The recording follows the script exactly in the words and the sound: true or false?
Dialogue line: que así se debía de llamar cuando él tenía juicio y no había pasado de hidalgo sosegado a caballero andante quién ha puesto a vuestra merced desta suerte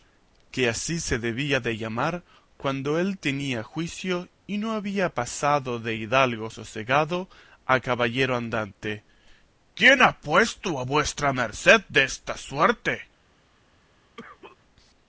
false